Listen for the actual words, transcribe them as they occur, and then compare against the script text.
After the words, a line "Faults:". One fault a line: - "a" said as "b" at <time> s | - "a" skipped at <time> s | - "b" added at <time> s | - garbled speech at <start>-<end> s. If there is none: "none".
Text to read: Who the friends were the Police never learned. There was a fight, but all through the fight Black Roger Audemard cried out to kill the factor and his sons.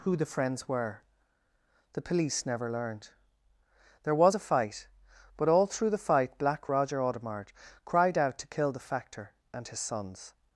Who the friends were the Police never learned. There was a fight, but all through the fight Black Roger Audemard cried out to kill the factor and his sons.
Faults:
none